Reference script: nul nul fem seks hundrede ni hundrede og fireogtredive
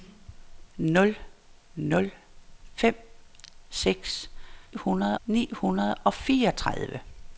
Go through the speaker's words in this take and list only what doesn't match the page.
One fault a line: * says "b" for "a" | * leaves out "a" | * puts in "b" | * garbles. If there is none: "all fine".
all fine